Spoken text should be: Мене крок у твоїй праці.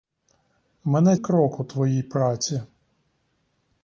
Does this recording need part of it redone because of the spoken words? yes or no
no